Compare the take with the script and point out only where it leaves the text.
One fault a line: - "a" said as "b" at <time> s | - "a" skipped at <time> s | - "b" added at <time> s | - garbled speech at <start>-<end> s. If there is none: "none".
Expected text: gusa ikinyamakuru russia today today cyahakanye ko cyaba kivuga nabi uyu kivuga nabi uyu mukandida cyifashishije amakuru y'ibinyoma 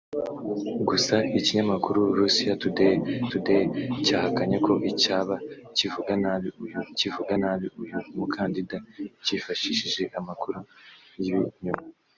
none